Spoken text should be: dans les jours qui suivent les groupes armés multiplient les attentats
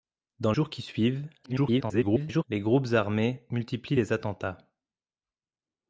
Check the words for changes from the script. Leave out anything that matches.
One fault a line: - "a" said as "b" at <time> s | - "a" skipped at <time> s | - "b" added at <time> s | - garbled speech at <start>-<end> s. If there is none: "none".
- "les" skipped at 0.5 s
- garbled speech at 1.4-2.4 s